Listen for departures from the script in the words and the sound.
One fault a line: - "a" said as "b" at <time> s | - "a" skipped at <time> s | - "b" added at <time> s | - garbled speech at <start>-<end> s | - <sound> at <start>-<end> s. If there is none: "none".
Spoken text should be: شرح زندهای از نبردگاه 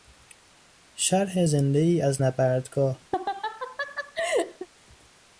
- laugh at 3.1-4.7 s